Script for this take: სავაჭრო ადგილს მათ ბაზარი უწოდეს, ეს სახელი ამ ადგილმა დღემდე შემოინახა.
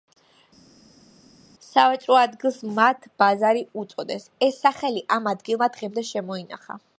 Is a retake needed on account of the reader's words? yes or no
no